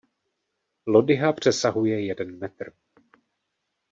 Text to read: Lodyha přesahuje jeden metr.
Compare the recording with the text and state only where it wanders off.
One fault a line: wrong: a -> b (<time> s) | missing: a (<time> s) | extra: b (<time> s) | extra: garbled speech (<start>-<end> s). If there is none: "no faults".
no faults